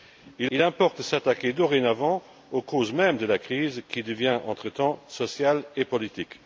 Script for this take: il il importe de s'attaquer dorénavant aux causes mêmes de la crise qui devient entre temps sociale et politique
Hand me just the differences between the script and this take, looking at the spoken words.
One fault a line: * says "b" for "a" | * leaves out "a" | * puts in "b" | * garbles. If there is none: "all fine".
all fine